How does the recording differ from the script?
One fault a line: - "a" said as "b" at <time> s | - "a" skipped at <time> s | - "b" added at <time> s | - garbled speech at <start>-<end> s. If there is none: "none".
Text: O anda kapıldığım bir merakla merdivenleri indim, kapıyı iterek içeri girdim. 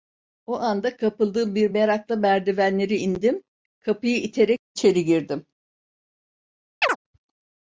none